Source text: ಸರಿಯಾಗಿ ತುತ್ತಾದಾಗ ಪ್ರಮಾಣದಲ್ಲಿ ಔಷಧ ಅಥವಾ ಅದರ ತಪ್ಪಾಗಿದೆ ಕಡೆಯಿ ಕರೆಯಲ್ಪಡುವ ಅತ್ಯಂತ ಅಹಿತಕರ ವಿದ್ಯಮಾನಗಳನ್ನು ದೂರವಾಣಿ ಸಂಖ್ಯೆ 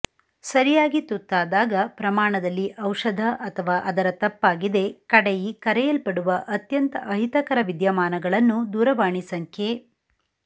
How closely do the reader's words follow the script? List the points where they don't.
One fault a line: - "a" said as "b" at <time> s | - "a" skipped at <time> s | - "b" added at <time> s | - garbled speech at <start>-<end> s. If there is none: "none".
none